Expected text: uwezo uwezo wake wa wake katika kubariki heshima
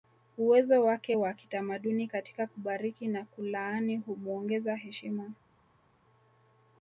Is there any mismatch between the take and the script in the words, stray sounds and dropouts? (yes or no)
yes